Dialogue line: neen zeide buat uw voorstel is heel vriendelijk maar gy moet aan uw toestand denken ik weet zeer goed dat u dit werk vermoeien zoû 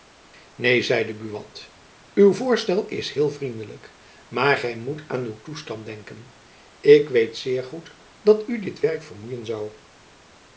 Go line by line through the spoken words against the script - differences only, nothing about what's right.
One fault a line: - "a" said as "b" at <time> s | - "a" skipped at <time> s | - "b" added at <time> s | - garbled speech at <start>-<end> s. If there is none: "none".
none